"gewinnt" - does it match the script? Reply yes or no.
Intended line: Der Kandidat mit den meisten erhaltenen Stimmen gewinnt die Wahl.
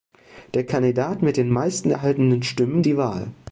no